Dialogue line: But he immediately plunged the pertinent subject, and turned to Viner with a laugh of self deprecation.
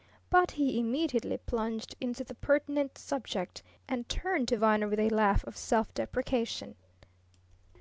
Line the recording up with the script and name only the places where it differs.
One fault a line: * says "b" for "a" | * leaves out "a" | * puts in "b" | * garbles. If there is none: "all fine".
* puts in "into"